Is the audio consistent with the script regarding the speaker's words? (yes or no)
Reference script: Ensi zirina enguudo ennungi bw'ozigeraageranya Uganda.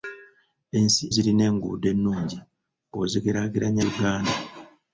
yes